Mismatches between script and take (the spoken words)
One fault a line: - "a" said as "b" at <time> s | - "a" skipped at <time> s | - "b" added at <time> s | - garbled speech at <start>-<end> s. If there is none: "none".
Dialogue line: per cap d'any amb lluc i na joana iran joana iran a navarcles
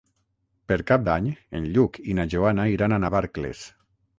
- "amb" said as "en" at 1.6 s
- "joana iran" skipped at 3.0 s